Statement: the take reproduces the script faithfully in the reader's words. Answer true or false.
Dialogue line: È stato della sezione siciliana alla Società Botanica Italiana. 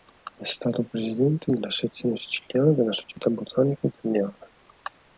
false